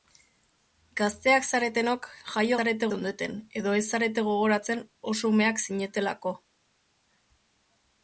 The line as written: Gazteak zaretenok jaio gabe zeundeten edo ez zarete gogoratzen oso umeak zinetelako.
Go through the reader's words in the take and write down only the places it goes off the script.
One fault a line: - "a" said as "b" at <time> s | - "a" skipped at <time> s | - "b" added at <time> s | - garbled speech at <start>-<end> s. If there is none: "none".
- "gabe" said as "zarete" at 2.6 s